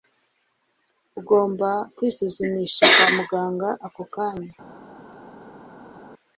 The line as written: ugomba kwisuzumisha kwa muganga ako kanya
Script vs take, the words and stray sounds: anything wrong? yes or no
no